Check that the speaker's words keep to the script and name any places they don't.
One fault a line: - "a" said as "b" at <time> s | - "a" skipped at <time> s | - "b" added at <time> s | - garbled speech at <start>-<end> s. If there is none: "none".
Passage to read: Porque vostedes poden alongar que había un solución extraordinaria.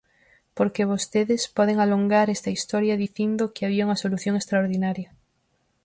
- "esta historia dicindo" added at 2.3 s
- "un" said as "unha" at 3.9 s